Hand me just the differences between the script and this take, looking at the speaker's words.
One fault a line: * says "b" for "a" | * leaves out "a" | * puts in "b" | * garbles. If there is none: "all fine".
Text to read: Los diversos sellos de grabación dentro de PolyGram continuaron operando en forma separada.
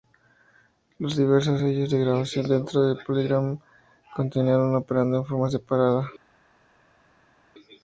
all fine